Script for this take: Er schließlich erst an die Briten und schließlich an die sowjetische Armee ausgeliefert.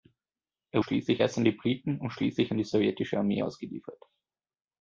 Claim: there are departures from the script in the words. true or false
false